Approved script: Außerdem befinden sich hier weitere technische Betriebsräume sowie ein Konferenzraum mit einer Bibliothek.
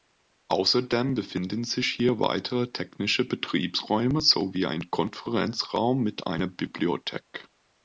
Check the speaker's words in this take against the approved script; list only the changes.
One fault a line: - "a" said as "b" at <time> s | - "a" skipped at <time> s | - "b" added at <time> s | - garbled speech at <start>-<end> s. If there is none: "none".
none